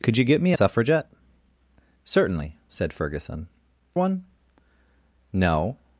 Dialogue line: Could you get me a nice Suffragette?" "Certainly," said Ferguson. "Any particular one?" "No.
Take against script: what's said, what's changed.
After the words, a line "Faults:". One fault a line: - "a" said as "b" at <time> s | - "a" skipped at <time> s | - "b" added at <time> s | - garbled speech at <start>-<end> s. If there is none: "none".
Could you get me a Suffragette?" "Certainly," said Ferguson. "One?" "No.
Faults:
- "nice" skipped at 0.6 s
- "Any particular" skipped at 3.5 s